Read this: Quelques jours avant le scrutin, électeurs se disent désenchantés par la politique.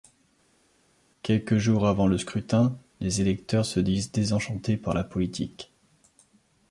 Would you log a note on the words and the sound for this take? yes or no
yes